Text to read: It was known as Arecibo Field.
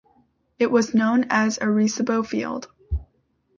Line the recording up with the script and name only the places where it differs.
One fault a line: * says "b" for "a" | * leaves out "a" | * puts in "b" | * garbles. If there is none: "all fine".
all fine